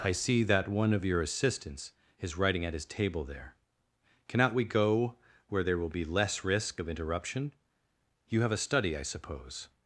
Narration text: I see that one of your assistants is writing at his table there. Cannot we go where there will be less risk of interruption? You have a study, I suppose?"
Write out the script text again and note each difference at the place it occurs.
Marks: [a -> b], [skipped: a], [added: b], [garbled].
I see that one of your assistants is writing at his table there. Cannot we go where there will be less risk of interruption? You have a study, I suppose?"